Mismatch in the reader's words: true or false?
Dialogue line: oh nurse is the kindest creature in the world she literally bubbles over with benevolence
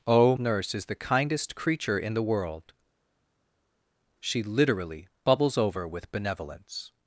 false